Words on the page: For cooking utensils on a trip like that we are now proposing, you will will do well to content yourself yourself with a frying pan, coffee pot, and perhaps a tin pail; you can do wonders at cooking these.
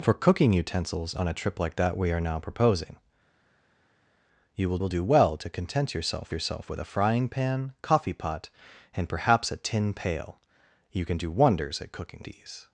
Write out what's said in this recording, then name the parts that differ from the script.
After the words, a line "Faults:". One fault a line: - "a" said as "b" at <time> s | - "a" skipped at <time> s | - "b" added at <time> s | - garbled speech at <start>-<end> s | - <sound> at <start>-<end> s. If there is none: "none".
For cooking utensils on a trip like that we are now proposing, you will will do well to content yourself yourself with a frying pan, coffee pot, and perhaps a tin pail; you can do wonders at cooking these.
Faults:
none